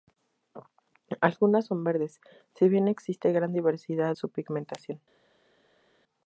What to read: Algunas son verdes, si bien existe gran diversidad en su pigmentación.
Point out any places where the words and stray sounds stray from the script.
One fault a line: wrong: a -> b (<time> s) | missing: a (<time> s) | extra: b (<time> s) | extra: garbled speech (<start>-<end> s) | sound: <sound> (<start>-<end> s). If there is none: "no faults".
missing: en (4.2 s)